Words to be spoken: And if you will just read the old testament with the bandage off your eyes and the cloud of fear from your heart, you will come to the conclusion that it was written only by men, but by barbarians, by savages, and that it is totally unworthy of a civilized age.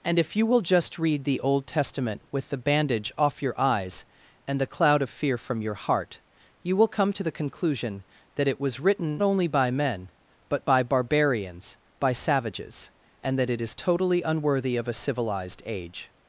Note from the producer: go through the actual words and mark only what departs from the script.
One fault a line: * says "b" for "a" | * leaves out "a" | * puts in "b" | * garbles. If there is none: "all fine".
all fine